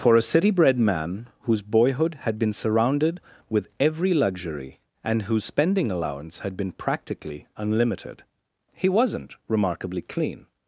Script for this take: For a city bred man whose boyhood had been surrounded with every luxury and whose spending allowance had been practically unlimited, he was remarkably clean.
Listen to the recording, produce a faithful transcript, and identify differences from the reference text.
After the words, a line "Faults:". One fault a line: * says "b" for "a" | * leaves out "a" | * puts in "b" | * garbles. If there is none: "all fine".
For a city bred man whose boyhood had been surrounded with every luxury and whose spending allowance had been practically unlimited, he wasn't remarkably clean.
Faults:
* says "wasn't" for "was"